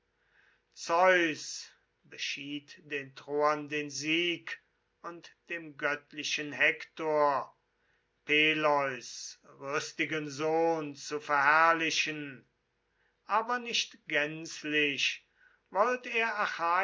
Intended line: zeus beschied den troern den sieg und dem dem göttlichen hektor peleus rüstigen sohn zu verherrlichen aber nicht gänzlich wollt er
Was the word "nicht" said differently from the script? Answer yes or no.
no